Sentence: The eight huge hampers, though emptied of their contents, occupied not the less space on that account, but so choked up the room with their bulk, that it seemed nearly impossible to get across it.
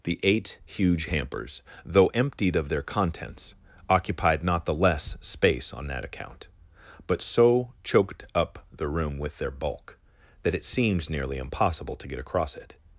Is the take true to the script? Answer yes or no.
yes